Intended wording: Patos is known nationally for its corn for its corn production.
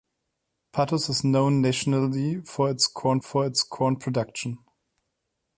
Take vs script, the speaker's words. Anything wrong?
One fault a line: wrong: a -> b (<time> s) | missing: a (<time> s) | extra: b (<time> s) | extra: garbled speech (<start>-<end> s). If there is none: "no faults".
no faults